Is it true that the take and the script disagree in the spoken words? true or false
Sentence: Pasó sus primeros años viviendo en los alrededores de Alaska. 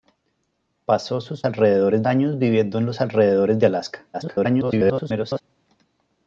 true